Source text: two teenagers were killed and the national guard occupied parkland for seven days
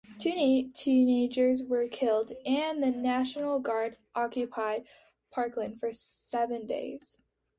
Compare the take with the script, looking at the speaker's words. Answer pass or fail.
pass